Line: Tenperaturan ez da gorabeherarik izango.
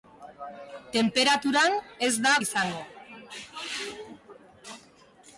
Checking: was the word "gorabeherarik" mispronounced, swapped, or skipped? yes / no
yes